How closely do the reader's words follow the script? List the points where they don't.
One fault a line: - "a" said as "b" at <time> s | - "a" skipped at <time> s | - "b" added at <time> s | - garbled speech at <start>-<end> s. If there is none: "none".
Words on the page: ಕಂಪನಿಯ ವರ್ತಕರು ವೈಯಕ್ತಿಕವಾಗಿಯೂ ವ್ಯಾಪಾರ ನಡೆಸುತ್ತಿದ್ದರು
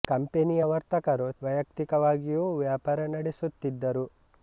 none